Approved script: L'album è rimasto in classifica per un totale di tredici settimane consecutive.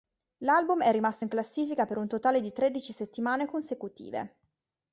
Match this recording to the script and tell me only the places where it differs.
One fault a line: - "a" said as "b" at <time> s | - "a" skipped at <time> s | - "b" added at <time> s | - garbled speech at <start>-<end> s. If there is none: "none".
none